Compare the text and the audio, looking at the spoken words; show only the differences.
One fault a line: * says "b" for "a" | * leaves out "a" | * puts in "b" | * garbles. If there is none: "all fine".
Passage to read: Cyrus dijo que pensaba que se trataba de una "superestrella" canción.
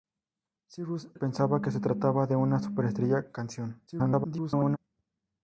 * leaves out "dijo que"
* garbles